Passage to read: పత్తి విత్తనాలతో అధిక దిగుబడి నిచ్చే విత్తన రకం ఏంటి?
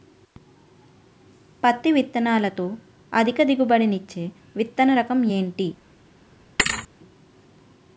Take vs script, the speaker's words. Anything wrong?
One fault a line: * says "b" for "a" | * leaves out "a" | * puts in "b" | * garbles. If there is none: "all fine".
all fine